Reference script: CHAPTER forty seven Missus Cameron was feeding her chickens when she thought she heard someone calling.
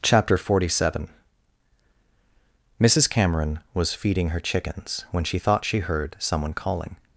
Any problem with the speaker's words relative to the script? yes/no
no